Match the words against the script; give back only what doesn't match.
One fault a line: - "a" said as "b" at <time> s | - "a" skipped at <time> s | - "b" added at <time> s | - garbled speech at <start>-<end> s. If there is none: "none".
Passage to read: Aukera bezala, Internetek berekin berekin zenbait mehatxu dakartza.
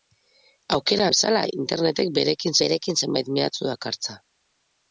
none